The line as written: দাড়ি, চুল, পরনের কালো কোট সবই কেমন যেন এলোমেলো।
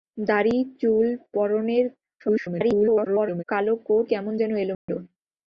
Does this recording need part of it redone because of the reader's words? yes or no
yes